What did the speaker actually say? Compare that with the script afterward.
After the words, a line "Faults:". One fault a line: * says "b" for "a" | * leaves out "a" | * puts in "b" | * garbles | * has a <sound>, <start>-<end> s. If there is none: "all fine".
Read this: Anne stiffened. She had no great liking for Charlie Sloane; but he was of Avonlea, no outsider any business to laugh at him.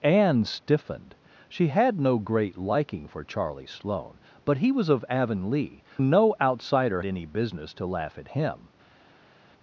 Anne stiffened. She had no great liking for Charlie Sloane; but he was of Avonlea, no outsider any business to laugh at him.
Faults:
all fine